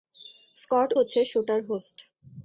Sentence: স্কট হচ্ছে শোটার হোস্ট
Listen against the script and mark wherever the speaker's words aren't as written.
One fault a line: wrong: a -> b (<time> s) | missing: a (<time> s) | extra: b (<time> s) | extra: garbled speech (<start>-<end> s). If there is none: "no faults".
no faults